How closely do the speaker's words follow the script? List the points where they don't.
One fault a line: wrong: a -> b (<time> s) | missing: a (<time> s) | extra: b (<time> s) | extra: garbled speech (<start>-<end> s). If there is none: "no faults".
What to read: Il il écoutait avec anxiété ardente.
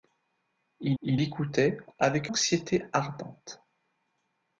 no faults